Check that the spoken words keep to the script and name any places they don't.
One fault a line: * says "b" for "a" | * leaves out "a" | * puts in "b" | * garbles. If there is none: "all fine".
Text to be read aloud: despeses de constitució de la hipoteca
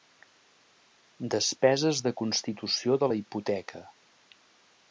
all fine